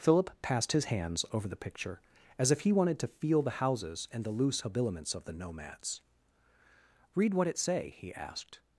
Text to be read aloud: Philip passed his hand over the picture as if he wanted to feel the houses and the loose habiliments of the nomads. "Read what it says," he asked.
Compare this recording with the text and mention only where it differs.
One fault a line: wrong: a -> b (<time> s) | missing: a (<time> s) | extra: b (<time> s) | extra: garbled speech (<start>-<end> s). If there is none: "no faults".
wrong: hand -> hands (0.8 s)
wrong: says -> say (7.6 s)